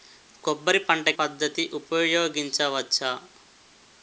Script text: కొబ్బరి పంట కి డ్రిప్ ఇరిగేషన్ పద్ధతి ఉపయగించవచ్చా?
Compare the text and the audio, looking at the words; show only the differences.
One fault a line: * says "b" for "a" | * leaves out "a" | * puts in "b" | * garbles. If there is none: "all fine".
* leaves out "కి డ్రిప్ ఇరిగేషన్"